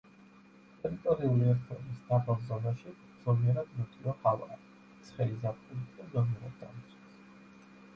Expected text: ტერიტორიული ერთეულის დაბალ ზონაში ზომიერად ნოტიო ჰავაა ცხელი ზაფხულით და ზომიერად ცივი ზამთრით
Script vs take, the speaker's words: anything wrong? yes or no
yes